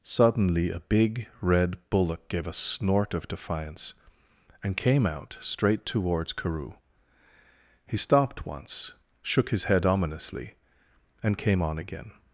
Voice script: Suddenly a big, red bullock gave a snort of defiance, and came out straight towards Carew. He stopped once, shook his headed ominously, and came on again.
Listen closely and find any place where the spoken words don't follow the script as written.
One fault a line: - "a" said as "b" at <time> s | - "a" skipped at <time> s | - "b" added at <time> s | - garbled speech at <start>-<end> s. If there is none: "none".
- "headed" said as "head" at 9.6 s